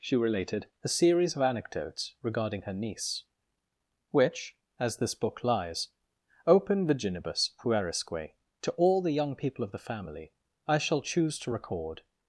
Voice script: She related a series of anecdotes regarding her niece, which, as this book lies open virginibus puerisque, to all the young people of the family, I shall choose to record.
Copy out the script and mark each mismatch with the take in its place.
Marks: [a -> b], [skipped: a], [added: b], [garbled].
She related a series of anecdotes regarding her niece, which, as this book lies open virginibus puerisque, to all the young people of the family, I shall choose to record.